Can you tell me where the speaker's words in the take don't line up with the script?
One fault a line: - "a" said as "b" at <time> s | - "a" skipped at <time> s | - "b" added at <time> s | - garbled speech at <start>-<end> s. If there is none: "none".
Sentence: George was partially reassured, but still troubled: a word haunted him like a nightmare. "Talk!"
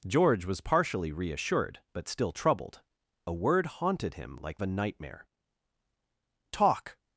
none